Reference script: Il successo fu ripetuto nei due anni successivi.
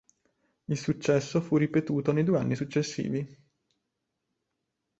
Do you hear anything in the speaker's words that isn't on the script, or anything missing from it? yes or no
no